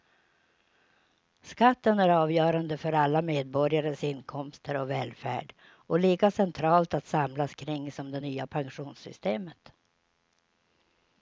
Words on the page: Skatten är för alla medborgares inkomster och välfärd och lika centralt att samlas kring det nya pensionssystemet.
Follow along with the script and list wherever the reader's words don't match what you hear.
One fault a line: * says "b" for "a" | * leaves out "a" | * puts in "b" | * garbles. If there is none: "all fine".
* puts in "avgörande"
* puts in "som"